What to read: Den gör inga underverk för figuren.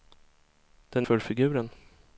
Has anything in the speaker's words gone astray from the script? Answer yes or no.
yes